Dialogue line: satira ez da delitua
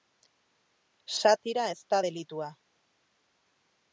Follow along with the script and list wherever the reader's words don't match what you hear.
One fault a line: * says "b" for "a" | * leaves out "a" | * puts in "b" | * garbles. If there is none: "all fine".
all fine